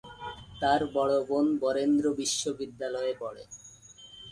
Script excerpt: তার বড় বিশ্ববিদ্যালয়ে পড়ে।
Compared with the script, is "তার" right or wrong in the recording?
right